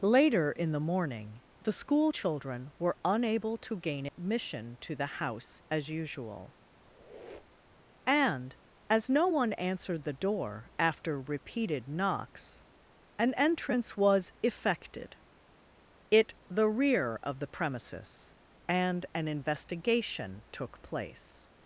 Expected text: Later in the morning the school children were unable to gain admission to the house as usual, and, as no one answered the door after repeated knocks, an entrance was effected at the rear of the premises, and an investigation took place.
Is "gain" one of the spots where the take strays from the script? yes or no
no